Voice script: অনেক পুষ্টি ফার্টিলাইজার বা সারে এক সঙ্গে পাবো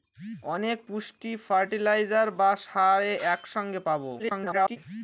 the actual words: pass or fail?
fail